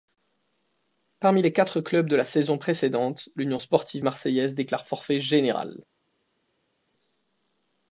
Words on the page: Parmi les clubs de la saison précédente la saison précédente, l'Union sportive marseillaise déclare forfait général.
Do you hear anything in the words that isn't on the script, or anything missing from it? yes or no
yes